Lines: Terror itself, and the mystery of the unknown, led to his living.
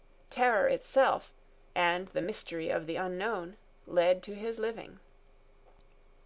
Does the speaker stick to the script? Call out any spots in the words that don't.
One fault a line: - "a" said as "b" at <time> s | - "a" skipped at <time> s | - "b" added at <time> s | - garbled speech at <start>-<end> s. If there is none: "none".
none